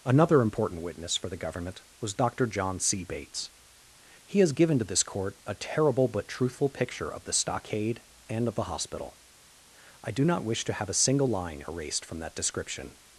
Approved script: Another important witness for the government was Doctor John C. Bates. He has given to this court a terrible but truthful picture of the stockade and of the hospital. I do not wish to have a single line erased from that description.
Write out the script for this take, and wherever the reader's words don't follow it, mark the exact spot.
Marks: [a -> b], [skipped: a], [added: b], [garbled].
Another important witness for the government was Doctor John C. Bates. He has given to this court a terrible but truthful picture of the stockade and of the hospital. I do not wish to have a single line erased from that description.